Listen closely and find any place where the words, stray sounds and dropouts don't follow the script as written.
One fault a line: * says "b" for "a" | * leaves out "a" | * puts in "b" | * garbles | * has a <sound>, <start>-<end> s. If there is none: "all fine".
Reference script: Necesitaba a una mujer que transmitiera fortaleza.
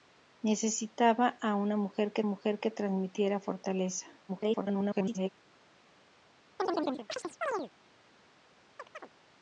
* puts in "mujer que"
* garbles
* has a chirp, 6.6-7.7 s
* has a chirp, 8.8-9.1 s